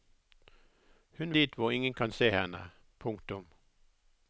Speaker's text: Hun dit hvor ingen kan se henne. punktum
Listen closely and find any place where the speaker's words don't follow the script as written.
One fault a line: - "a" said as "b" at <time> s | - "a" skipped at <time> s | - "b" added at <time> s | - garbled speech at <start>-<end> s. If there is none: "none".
none